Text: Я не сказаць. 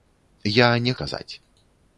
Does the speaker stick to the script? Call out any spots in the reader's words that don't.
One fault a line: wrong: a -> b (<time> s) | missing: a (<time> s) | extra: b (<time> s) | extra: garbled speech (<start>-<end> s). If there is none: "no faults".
no faults